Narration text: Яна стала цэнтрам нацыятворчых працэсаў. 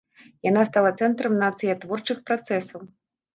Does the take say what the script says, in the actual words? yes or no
yes